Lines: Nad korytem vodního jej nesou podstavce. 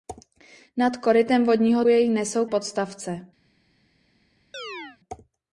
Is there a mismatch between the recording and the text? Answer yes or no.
no